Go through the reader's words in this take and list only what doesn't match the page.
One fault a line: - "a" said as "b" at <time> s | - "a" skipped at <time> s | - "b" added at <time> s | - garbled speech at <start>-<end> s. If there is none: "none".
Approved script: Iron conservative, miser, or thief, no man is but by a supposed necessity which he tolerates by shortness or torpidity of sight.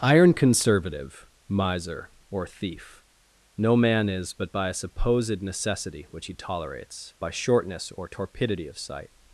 none